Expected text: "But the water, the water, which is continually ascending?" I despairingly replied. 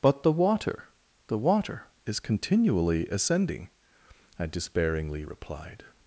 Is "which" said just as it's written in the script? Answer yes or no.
no